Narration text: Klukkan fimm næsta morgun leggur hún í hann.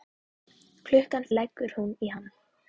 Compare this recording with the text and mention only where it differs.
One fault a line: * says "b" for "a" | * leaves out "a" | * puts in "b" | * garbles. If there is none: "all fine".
* leaves out "fimm næsta morgun"